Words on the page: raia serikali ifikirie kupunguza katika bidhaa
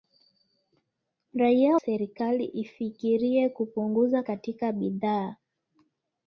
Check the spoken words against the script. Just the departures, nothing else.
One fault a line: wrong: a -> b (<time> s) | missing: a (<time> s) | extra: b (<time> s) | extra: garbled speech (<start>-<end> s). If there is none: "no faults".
no faults